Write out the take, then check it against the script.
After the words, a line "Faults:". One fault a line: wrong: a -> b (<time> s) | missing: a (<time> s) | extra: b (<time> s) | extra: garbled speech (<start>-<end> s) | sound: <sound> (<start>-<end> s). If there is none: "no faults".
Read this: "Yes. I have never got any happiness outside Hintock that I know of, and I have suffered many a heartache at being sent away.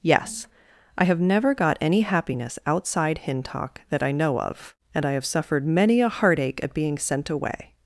"Yes. I have never got any happiness outside Hintock that I know of, and I have suffered many a heartache at being sent away.
Faults:
no faults